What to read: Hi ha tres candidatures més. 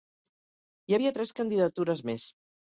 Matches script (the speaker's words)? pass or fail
fail